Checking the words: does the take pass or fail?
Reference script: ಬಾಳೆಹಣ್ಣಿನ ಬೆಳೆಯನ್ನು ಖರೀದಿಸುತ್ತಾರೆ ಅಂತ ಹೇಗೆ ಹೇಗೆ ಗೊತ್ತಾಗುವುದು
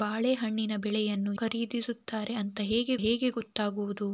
pass